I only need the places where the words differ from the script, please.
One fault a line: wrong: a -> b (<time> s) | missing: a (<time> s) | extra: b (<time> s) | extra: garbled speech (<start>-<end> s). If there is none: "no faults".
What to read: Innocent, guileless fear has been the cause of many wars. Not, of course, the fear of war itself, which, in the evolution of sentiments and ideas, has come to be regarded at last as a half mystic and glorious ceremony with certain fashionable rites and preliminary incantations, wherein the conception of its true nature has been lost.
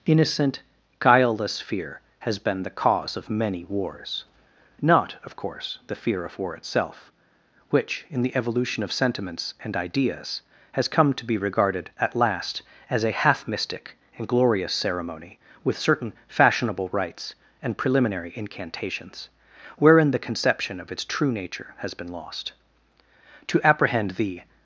extra: To apprehend the (23.4 s)